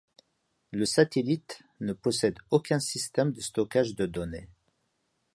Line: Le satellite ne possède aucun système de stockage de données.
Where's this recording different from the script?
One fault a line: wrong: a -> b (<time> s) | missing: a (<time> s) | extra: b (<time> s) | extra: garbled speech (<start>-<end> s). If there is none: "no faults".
no faults